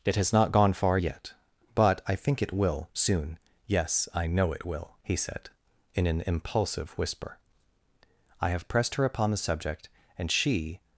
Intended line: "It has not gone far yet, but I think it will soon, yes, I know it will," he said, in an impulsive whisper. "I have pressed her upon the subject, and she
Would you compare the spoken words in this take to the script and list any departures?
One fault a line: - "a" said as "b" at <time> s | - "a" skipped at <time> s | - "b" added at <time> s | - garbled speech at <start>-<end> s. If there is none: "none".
none